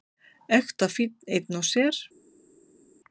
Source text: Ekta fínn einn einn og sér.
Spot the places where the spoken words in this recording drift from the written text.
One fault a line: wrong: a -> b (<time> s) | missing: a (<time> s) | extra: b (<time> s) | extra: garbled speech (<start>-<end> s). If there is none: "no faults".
missing: einn (1.6 s)